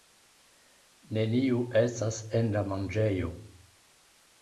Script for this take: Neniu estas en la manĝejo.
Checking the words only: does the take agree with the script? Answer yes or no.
yes